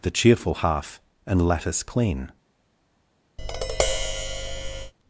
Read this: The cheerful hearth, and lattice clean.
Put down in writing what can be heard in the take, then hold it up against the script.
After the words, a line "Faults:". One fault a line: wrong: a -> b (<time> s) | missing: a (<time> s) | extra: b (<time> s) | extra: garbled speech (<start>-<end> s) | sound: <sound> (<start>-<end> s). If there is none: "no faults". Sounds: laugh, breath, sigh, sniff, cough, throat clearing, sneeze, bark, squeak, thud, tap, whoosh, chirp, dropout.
The cheerful half, and lattice clean.
Faults:
wrong: hearth -> half (0.6 s)
sound: tap (3.4-4.9 s)